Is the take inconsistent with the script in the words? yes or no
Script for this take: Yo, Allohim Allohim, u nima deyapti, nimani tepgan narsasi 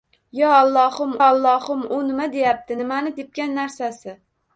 no